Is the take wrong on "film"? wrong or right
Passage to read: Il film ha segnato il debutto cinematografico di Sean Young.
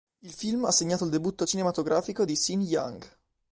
right